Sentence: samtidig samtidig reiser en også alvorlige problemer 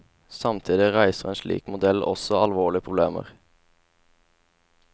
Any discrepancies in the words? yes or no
yes